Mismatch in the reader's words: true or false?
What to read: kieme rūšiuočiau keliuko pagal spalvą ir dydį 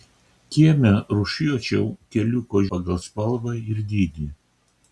false